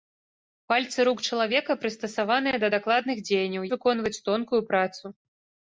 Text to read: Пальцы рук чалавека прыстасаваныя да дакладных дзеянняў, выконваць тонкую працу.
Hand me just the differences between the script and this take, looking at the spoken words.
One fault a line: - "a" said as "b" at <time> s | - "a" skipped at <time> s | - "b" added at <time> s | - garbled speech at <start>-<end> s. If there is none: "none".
none